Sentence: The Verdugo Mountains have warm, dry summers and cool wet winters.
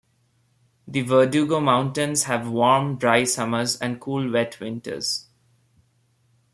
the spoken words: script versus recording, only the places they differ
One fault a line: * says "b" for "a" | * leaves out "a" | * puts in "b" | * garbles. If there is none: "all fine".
all fine